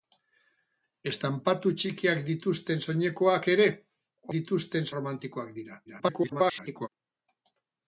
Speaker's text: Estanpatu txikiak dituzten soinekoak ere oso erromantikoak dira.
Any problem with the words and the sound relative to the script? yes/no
yes